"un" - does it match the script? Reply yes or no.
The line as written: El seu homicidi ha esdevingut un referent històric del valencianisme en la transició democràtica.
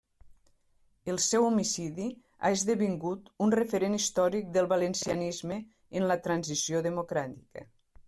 yes